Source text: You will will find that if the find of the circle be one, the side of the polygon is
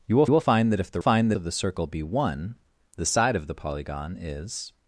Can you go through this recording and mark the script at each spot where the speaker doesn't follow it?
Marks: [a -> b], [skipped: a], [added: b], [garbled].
You will will find that if the find of the circle be one, the side of the polygon is